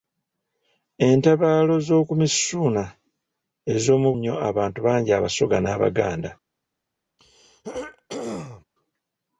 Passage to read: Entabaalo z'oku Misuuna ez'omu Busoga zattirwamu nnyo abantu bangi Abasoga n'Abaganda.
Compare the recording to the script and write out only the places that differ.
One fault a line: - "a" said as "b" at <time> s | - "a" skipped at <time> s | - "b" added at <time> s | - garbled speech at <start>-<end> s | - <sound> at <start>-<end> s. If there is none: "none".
- "Busoga zattirwamu" skipped at 4.1 s
- throat clearing at 7.2-8.6 s